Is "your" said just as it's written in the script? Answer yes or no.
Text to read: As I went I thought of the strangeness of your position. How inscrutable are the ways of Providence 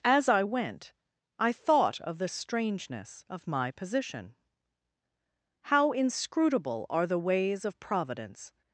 no